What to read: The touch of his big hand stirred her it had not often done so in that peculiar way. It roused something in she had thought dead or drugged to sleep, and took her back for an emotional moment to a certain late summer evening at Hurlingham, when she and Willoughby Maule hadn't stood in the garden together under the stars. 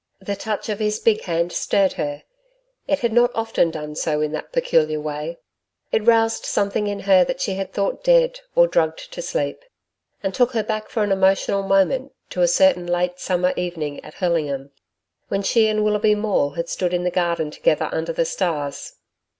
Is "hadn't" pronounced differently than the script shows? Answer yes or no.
yes